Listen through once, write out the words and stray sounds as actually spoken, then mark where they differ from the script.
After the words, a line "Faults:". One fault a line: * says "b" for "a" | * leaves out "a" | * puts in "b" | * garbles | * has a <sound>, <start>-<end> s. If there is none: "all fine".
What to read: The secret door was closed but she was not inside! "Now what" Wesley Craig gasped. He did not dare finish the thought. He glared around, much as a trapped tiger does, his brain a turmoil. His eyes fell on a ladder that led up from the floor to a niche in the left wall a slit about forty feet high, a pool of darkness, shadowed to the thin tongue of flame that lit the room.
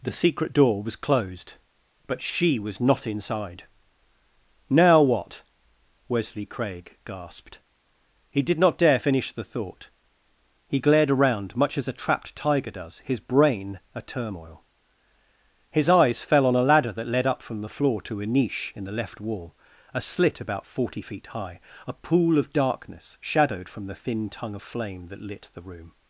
The secret door was closed but she was not inside! "Now what" Wesley Craig gasped. He did not dare finish the thought. He glared around, much as a trapped tiger does, his brain a turmoil. His eyes fell on a ladder that led up from the floor to a niche in the left wall a slit about forty feet high, a pool of darkness, shadowed from the thin tongue of flame that lit the room.
Faults:
* says "from" for "to"